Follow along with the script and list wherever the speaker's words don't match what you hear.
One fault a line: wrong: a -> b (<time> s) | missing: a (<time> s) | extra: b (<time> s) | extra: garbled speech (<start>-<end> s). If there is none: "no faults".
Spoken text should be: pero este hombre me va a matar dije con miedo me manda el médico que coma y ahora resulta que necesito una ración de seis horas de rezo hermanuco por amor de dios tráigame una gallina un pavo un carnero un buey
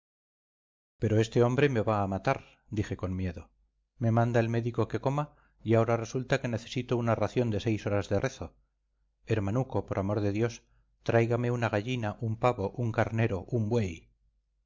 no faults